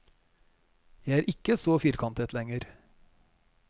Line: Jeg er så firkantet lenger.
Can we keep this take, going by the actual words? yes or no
no